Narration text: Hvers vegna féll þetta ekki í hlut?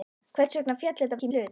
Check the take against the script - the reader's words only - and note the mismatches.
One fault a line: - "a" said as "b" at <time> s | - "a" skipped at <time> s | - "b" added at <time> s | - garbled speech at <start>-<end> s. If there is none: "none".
none